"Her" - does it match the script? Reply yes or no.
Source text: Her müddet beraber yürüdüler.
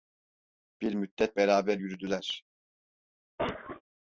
no